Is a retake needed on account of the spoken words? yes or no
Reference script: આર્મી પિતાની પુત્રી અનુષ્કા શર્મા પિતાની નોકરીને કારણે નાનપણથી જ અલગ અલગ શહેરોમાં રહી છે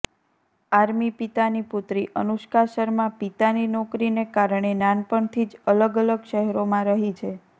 no